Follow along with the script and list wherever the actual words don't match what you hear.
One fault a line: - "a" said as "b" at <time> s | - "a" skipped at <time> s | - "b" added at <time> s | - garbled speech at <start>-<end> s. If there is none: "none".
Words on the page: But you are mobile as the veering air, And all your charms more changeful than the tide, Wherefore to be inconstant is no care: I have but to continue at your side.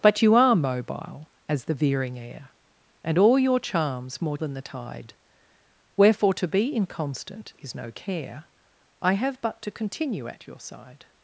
- "changeful" skipped at 4.4 s